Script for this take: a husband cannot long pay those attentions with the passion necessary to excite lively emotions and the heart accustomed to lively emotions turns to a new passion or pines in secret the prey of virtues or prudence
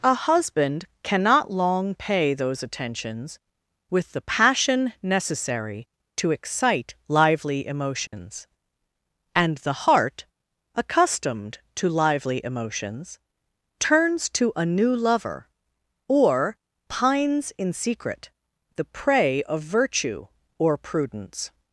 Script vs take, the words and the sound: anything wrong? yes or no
yes